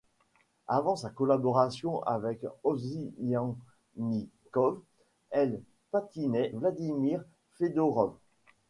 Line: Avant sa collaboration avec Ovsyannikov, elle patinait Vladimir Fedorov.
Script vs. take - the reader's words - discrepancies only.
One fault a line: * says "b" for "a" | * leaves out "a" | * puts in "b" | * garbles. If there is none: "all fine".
all fine